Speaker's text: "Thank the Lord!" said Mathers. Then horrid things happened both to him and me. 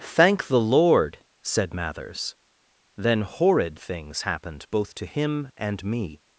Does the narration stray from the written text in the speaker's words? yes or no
no